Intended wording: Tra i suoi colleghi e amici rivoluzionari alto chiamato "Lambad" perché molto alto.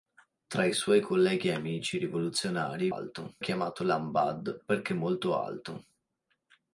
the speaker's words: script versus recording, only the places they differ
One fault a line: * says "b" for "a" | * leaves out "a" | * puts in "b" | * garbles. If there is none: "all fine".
all fine